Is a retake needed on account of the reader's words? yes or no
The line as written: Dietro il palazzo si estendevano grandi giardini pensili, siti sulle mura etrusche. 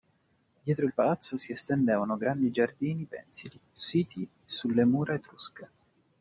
no